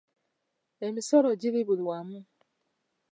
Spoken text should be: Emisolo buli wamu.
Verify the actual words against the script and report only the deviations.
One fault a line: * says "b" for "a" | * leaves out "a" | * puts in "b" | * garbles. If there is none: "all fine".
* puts in "giri"